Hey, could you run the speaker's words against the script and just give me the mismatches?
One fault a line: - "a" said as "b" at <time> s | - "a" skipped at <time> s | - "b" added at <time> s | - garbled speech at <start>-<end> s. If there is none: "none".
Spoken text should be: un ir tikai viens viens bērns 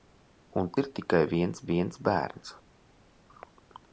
none